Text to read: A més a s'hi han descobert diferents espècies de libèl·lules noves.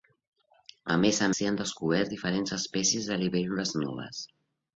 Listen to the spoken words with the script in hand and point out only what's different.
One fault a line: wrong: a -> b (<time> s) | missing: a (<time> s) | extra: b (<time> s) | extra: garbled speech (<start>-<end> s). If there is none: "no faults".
no faults